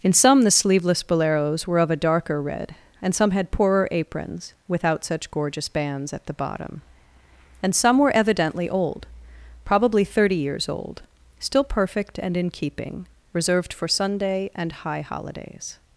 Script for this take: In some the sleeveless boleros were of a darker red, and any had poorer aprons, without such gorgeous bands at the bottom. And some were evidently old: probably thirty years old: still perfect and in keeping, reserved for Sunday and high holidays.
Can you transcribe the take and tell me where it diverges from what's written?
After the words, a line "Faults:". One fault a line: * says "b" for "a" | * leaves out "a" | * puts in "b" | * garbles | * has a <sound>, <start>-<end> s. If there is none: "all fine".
In some the sleeveless boleros were of a darker red, and some had poorer aprons, without such gorgeous bands at the bottom. And some were evidently old: probably thirty years old: still perfect and in keeping, reserved for Sunday and high holidays.
Faults:
* says "some" for "any"